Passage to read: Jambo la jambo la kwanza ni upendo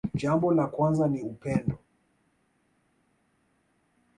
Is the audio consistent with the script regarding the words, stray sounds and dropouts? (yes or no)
no